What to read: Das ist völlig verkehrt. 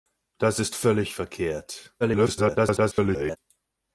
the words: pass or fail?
fail